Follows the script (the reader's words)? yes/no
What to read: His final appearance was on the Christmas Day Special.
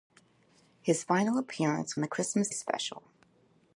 no